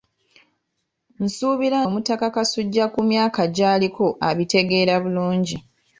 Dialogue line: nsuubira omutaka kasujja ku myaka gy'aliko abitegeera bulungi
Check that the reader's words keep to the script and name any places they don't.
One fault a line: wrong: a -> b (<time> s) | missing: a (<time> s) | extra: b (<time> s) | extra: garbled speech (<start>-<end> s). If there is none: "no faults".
no faults